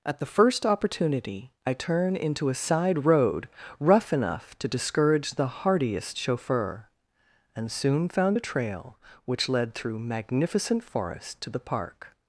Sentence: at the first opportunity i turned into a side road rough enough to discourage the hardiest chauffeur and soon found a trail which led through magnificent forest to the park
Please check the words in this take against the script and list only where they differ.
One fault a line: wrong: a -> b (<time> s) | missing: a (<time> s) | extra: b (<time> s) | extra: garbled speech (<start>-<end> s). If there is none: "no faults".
wrong: turned -> turn (1.7 s)